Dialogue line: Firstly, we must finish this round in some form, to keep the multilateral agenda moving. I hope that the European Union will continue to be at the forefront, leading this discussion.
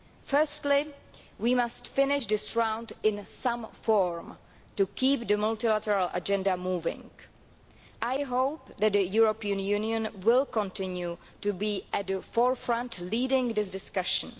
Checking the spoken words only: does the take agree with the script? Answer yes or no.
yes